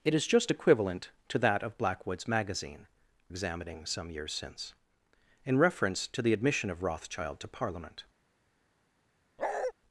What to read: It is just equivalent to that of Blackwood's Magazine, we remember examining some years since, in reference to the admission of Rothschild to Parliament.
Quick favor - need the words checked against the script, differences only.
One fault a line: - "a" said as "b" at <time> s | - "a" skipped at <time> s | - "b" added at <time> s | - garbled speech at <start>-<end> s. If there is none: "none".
- "we remember" skipped at 2.9 s